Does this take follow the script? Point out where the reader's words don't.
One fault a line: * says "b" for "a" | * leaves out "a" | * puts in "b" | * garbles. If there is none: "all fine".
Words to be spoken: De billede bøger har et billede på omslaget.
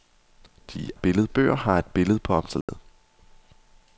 all fine